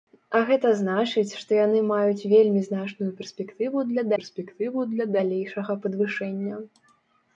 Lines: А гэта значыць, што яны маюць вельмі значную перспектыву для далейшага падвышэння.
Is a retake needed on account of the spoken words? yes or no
yes